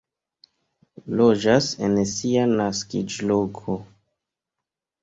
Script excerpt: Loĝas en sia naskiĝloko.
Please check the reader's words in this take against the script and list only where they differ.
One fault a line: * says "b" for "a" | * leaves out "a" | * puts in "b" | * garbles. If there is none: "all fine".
all fine